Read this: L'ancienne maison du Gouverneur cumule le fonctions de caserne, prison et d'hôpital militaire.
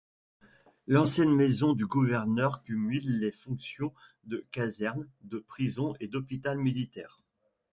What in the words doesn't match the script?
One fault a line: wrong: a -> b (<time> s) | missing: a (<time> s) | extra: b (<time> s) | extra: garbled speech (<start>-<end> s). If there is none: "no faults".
wrong: le -> les (3.2 s)
extra: de (5.2 s)